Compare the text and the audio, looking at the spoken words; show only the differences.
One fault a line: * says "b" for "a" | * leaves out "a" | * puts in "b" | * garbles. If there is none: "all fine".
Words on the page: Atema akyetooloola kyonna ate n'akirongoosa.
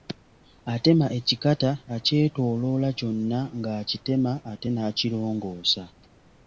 * puts in "ekikata"
* puts in "ng'akitema"